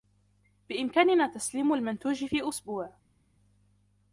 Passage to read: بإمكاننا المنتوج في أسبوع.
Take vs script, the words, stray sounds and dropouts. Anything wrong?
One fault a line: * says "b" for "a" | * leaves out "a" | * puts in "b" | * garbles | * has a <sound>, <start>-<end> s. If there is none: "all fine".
* puts in "تسليم"